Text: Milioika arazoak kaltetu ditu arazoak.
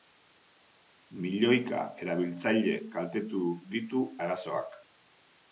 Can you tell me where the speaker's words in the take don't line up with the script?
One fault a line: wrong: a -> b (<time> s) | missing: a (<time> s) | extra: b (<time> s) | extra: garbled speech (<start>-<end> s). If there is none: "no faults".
wrong: arazoak -> erabiltzaile (2.0 s)